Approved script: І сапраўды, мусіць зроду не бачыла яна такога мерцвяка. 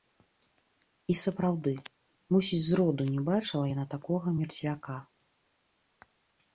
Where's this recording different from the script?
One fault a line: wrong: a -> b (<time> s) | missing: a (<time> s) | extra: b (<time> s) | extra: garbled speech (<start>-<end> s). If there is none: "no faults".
no faults